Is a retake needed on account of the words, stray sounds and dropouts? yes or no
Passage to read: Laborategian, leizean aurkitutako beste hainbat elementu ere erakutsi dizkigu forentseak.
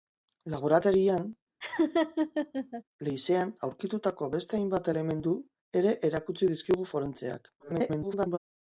yes